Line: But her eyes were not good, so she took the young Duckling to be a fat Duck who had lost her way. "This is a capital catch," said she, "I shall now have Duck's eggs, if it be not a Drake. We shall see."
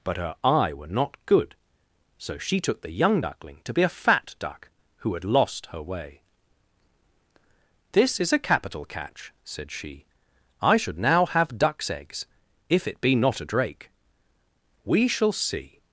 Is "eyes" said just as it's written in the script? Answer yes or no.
no